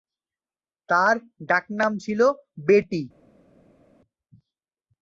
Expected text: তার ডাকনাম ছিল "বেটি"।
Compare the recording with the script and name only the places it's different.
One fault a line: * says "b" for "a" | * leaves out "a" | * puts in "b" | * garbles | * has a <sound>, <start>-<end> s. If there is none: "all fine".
all fine